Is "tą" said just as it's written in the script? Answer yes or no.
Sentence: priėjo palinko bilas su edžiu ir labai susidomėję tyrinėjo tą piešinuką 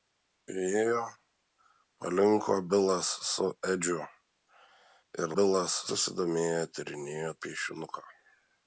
no